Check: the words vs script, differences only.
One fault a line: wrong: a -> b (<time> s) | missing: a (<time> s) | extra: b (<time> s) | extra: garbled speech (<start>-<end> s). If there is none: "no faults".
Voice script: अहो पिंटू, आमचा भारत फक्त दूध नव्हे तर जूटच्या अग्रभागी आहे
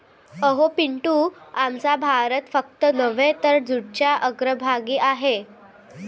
missing: दूध (2.9 s)